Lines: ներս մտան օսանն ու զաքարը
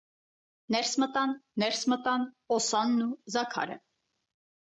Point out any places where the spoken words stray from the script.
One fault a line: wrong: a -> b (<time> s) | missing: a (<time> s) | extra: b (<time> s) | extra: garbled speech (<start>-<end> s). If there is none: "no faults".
extra: ներս մտան (1.6 s)